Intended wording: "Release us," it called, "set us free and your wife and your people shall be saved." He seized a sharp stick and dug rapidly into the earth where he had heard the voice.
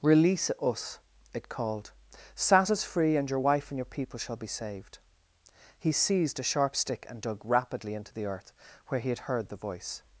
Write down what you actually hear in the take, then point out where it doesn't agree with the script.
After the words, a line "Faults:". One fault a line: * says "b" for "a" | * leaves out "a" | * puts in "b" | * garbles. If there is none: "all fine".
"Release us," it called, "sat us free and your wife and your people shall be saved." He seized a sharp stick and dug rapidly into the earth where he had heard the voice.
Faults:
* says "sat" for "set"